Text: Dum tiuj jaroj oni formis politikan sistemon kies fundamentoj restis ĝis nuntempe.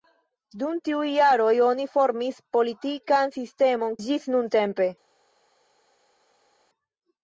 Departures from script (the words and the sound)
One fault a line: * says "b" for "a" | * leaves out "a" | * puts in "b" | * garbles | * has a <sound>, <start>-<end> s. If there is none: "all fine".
* leaves out "kies fundamentoj restis"